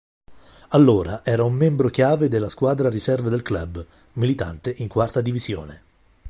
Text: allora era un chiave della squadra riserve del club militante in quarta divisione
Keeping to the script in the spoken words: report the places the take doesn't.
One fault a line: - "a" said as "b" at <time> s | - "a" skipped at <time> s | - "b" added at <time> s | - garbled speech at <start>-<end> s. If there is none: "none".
- "membro" added at 1.5 s